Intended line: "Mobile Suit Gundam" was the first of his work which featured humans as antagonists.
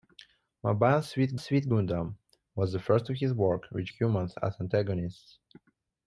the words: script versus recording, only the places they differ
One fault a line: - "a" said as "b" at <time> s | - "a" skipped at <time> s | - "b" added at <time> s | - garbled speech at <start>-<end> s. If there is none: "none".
- "Suit" added at 1.4 s
- "featured" skipped at 3.9 s